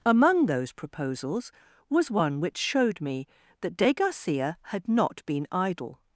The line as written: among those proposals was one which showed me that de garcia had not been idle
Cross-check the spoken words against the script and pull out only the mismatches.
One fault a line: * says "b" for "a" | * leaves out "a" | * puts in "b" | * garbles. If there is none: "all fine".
all fine